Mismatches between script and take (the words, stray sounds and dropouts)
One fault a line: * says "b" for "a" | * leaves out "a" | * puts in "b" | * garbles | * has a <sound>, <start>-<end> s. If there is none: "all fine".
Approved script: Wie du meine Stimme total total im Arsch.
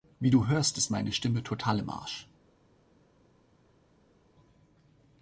* puts in "hörst ist"
* leaves out "total"